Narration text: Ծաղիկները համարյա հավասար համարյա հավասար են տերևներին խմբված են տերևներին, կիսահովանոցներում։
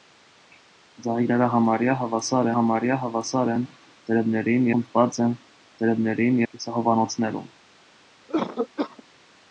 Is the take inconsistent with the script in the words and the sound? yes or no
yes